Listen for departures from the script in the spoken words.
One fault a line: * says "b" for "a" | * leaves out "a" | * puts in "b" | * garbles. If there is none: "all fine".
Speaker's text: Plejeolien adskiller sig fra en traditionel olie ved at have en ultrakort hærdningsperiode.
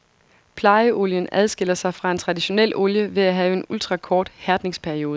all fine